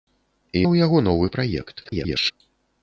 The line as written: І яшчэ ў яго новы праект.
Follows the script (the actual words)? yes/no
no